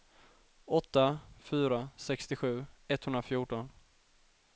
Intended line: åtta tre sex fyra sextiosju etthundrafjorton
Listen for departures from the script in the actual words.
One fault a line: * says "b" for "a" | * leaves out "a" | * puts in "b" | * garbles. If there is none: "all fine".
* leaves out "tre sex"